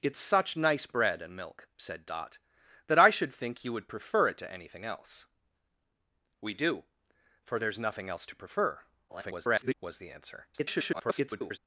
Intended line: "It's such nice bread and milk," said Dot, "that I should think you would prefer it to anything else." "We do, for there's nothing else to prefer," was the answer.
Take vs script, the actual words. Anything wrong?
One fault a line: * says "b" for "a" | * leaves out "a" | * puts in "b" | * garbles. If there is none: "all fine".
* garbles
* garbles